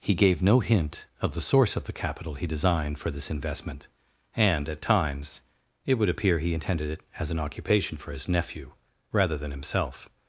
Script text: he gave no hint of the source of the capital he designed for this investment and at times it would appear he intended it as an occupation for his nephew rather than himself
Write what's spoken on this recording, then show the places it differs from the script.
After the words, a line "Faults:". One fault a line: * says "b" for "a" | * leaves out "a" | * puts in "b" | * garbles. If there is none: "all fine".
he gave no hint of the source of the capital he designed for this investment and at times it would appear he intended it as an occupation for his nephew rather than himself
Faults:
all fine